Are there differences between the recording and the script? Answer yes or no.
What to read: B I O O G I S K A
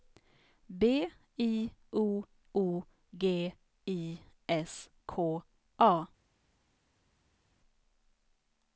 no